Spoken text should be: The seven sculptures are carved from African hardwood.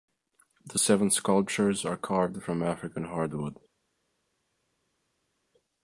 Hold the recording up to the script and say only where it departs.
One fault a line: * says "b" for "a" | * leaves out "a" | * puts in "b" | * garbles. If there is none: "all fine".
all fine